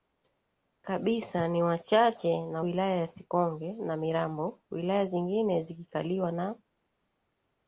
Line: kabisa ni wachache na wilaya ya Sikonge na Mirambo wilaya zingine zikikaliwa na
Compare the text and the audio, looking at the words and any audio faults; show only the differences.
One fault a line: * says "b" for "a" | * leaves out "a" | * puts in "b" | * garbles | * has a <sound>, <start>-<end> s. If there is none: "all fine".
all fine